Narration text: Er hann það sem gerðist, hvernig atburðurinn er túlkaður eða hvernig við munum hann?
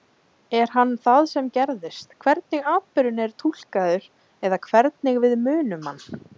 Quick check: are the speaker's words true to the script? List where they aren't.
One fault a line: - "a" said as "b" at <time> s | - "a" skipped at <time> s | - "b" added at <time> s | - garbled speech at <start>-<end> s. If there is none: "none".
none